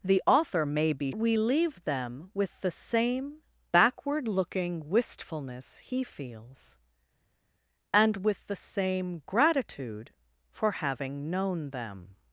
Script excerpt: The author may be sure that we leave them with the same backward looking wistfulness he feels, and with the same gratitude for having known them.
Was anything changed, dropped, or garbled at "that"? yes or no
yes